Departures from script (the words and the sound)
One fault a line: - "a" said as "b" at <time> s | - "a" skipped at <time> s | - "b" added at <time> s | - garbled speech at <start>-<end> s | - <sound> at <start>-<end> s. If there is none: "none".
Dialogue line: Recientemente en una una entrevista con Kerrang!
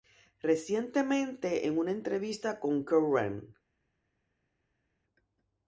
- "una" skipped at 1.9 s